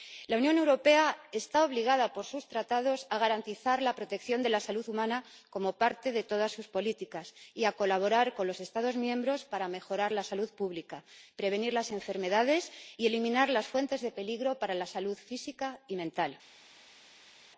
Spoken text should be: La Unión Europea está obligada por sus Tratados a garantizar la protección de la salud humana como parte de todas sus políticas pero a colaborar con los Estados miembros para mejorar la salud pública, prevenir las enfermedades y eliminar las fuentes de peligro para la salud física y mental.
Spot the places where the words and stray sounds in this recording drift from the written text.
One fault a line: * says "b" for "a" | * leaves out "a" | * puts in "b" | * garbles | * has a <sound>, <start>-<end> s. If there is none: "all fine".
* says "y" for "pero"